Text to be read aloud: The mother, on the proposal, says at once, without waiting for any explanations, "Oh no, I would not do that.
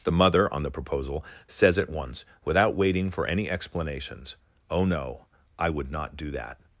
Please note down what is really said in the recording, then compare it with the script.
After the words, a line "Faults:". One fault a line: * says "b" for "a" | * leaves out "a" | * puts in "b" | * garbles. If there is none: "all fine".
The mother, on the proposal, says at once, without waiting for any explanations, "Oh no, I would not do that.
Faults:
all fine